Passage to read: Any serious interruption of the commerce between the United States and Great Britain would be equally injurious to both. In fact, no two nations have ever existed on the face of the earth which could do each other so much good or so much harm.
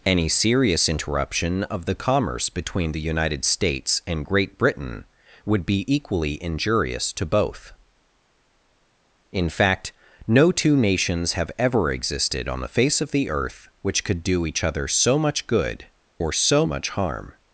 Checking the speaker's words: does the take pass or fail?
pass